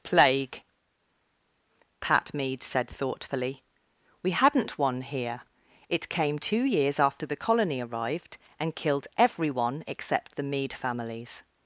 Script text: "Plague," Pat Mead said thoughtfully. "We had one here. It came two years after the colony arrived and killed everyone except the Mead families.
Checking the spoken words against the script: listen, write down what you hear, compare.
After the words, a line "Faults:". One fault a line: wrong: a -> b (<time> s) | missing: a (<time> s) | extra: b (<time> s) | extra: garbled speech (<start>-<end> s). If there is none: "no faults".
"Plague," Pat Mead said thoughtfully. "We hadn't one here. It came two years after the colony arrived and killed everyone except the Mead families.
Faults:
wrong: had -> hadn't (4.3 s)